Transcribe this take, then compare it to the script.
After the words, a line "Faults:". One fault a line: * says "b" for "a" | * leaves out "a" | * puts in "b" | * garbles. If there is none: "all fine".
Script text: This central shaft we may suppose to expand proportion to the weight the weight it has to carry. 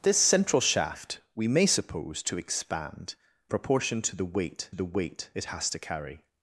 This central shaft we may suppose to expand proportion to the weight the weight it has to carry.
Faults:
all fine